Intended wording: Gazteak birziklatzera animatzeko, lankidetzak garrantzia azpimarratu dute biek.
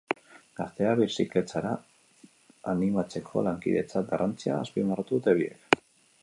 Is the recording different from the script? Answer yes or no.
no